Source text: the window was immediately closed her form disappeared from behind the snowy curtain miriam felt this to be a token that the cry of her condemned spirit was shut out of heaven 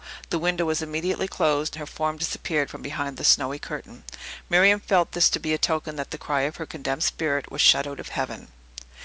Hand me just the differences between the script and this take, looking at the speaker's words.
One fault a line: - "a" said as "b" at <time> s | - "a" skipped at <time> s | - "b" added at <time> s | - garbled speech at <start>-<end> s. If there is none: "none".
none